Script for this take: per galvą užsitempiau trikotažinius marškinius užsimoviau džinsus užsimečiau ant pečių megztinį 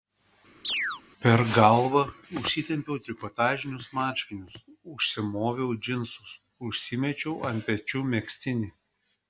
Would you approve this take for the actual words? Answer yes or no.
yes